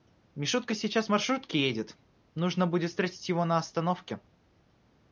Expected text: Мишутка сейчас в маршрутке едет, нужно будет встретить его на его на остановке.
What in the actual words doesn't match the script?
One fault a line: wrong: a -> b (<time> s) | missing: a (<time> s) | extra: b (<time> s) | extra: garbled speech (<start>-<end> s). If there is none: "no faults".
missing: его на (3.6 s)